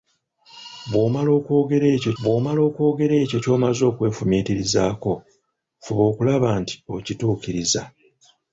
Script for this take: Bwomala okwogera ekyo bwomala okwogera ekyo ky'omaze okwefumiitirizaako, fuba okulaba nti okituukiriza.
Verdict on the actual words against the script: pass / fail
pass